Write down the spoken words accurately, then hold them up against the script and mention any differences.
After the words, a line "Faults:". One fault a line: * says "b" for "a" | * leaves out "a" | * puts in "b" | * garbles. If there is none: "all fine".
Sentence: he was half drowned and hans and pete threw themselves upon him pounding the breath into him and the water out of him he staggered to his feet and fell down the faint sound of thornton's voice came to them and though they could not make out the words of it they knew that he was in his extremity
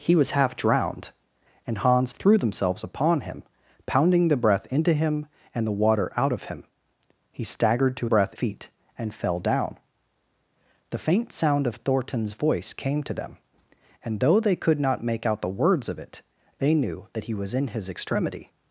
he was half drowned and hans threw themselves upon him pounding the breath into him and the water out of him he staggered to breath feet and fell down the faint sound of thornton's voice came to them and though they could not make out the words of it they knew that he was in his extremity
Faults:
* leaves out "and pete"
* says "breath" for "his"